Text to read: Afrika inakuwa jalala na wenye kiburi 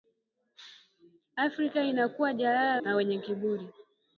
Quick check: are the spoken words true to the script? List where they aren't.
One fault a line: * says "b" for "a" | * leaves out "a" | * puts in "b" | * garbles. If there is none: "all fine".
all fine